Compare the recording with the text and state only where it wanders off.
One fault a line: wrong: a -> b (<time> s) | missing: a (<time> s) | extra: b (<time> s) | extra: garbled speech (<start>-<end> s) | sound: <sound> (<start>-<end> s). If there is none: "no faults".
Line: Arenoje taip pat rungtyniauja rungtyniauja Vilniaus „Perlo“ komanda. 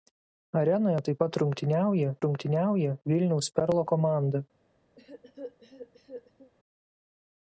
sound: cough (5.0-6.5 s)